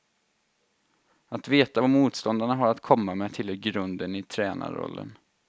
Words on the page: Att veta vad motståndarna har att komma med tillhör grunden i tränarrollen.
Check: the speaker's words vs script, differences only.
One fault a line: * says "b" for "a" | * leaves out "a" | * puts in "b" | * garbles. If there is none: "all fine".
all fine